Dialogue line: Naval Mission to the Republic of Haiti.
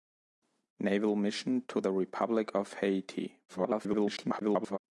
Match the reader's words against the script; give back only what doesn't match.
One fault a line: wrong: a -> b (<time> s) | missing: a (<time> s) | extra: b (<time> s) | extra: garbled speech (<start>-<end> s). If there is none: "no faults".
extra: garbled speech (3.5-4.8 s)